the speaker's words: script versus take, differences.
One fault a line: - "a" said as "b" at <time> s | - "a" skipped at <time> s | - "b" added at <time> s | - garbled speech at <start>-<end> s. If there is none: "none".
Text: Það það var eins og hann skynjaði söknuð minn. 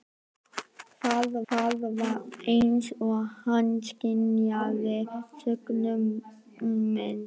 none